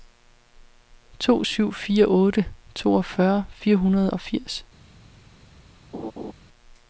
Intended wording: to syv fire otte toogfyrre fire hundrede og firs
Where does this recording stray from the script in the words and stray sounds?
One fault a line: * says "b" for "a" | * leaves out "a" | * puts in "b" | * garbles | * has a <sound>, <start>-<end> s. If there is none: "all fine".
* has a laugh, 5.9-6.3 s